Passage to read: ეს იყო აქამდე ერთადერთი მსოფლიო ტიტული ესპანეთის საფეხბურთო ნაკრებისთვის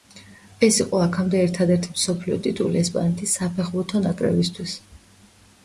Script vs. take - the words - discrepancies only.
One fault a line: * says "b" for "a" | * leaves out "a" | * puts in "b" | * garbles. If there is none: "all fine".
all fine